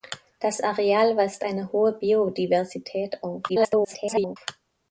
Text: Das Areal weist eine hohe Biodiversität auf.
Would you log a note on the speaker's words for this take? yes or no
yes